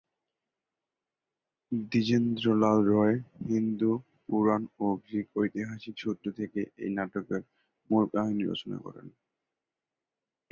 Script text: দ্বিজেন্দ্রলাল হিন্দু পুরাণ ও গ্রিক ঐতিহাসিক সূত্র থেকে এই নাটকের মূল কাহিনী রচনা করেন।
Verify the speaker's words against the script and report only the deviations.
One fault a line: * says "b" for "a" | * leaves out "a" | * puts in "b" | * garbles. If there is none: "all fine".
* puts in "রায়"